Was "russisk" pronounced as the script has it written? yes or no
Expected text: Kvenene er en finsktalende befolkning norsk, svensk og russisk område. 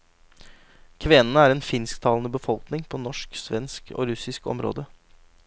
yes